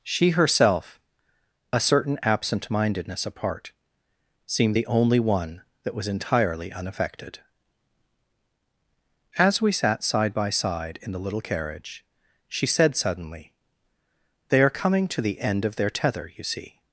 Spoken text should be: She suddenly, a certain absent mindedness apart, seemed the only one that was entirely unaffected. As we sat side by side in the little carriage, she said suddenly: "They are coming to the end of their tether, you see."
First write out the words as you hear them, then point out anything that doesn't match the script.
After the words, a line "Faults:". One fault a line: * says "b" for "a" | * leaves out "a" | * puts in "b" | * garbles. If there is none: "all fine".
She herself, a certain absent mindedness apart, seemed the only one that was entirely unaffected. As we sat side by side in the little carriage, she said suddenly: "They are coming to the end of their tether, you see."
Faults:
* says "herself" for "suddenly"